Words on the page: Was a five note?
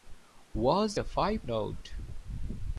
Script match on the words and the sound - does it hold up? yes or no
yes